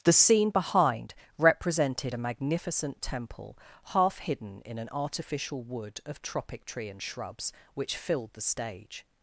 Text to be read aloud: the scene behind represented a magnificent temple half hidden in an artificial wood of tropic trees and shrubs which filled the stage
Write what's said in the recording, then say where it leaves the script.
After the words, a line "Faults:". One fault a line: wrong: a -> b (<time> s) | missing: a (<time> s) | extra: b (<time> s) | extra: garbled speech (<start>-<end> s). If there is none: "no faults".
the scene behind represented a magnificent temple half hidden in an artificial wood of tropic tree and shrubs which filled the stage
Faults:
wrong: trees -> tree (6.6 s)